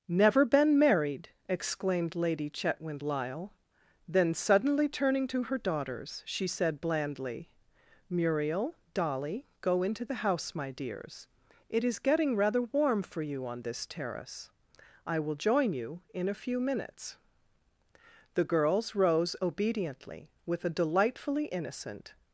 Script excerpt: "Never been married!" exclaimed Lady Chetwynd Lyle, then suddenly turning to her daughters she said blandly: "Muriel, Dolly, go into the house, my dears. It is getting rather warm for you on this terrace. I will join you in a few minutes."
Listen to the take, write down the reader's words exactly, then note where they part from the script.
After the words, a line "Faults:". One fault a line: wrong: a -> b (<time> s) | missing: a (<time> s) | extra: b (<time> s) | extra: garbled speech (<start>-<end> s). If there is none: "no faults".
"Never been married!" exclaimed Lady Chetwynd Lyle, then suddenly turning to her daughters she said blandly: "Muriel, Dolly, go into the house, my dears. It is getting rather warm for you on this terrace. I will join you in a few minutes." The "girls" rose obediently with a delightfully innocent
Faults:
extra: The girls rose obediently with a delightfully innocent (18.4 s)